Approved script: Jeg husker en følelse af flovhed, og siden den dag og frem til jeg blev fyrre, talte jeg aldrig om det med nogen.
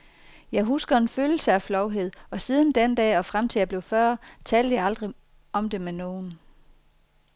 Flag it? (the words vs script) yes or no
no